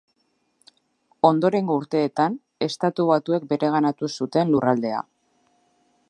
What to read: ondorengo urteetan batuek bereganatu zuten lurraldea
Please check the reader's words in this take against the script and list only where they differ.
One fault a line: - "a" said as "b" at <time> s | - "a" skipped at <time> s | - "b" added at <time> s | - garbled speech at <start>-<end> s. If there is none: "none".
- "estatu" added at 2.7 s